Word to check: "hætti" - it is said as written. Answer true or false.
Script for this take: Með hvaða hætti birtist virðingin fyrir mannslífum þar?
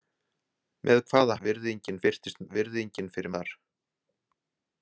false